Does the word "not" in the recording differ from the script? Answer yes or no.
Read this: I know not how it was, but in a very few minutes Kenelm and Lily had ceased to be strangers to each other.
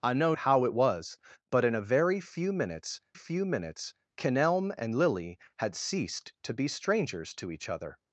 yes